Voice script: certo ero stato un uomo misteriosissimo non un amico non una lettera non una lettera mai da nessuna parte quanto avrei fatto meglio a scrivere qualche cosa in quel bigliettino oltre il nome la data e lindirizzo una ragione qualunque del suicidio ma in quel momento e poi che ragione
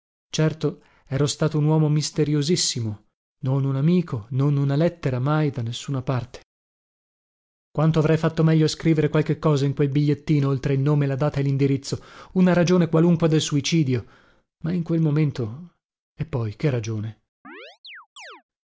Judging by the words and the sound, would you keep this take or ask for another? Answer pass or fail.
fail